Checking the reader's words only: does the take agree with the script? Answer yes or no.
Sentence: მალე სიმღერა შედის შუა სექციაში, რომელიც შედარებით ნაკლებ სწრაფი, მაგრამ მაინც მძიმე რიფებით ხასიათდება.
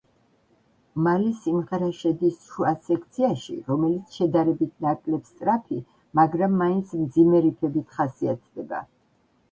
yes